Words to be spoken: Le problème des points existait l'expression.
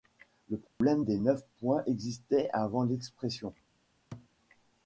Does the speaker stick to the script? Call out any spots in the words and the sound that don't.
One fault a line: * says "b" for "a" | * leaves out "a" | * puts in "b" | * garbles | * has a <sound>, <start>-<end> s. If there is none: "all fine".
* has a dropout, 0.7-0.8 s
* puts in "neuf"
* puts in "avant"
* has a thud, 4.1-4.3 s